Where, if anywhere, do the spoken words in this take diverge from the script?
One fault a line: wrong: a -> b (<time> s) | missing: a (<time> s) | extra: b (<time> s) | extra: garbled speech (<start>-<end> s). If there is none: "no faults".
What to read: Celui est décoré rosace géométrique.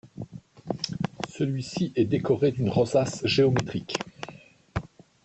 extra: ci (1.6 s)
extra: d'une (2.5 s)